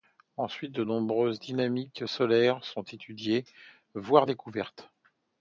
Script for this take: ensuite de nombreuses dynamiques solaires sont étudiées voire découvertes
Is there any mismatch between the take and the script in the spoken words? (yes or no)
no